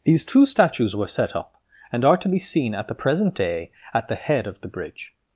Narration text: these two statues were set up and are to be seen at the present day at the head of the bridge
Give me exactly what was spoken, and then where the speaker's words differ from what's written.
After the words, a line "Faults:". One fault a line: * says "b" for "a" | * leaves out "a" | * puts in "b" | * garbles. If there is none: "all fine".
these two statues were set up and are to be seen at the present day at the head of the bridge
Faults:
all fine